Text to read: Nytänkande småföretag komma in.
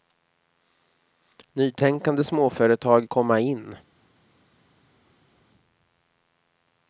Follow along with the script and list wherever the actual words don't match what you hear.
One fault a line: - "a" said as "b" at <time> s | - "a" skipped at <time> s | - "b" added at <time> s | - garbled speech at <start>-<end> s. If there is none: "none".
none